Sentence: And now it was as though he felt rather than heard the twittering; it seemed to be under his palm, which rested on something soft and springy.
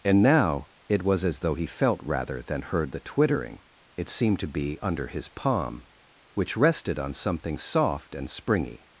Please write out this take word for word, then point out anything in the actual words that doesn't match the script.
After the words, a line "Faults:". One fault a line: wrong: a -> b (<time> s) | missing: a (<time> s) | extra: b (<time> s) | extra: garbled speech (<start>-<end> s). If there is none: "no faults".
And now it was as though he felt rather than heard the twittering; it seemed to be under his palm, which rested on something soft and springy.
Faults:
no faults